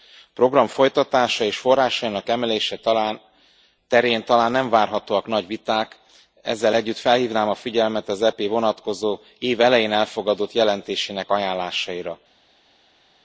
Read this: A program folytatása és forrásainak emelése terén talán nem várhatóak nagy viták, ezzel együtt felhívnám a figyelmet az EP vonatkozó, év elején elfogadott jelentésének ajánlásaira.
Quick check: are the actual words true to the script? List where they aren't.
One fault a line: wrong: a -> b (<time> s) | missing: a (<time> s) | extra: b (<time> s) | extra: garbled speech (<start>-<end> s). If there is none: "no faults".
no faults